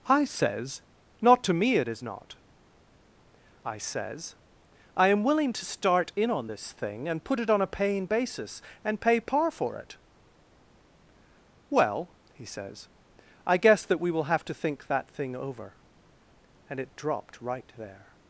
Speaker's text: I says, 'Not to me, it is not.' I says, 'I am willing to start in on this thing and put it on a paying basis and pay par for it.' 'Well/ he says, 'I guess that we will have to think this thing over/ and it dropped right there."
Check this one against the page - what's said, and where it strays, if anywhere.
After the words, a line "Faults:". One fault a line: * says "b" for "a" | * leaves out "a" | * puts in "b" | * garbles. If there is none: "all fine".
I says, 'Not to me, it is not.' I says, 'I am willing to start in on this thing and put it on a paying basis and pay par for it.' 'Well/ he says, 'I guess that we will have to think that thing over/ and it dropped right there."
Faults:
* says "that" for "this"